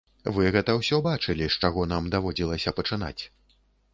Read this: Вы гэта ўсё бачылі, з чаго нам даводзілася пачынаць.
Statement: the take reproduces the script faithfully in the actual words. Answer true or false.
true